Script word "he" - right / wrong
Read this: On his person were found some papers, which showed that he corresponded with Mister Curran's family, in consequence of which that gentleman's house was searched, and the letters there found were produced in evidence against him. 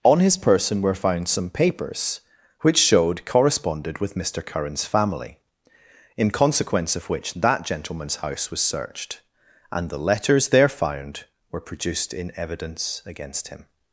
wrong